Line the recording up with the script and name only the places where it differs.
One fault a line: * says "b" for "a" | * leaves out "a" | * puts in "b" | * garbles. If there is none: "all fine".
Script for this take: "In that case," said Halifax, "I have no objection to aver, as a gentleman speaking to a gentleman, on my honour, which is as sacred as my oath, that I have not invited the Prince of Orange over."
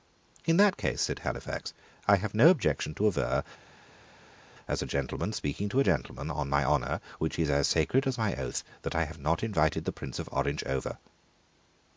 all fine